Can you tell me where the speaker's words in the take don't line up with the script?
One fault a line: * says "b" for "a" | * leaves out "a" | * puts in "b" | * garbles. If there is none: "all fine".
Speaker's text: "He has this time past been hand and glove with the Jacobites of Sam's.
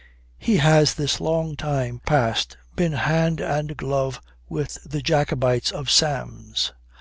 * puts in "long"